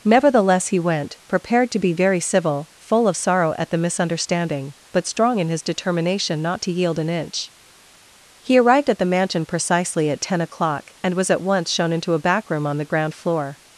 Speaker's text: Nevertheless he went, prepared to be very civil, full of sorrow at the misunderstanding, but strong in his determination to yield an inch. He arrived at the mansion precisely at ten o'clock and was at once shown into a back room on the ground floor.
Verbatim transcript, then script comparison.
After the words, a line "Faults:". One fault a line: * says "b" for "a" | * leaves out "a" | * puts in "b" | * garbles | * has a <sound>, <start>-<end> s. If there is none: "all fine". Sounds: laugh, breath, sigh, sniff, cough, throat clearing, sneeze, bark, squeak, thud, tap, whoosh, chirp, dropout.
Nevertheless he went, prepared to be very civil, full of sorrow at the misunderstanding, but strong in his determination not to yield an inch. He arrived at the mansion precisely at ten o'clock and was at once shown into a back room on the ground floor.
Faults:
* puts in "not"